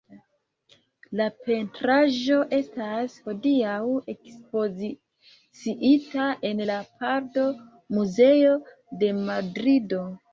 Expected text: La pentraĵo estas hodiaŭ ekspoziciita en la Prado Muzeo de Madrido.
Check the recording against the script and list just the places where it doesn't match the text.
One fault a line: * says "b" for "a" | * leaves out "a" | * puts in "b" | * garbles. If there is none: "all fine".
all fine